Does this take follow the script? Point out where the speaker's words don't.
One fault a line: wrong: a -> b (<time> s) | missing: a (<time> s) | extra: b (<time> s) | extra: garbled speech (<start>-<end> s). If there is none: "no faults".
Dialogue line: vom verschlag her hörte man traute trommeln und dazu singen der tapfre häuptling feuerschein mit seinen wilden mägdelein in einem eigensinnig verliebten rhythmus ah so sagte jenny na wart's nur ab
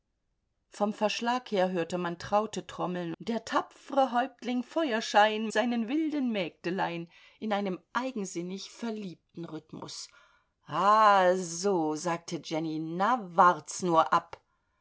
missing: und dazu singen (3.1 s)
missing: mit (5.5 s)